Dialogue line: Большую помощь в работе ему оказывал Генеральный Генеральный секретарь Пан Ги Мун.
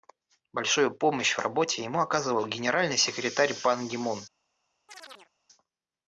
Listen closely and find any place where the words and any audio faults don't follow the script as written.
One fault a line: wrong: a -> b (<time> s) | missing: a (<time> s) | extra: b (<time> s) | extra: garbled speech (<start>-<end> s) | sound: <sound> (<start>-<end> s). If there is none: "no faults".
missing: Генеральный (3.0 s)
sound: chirp (4.9-5.3 s)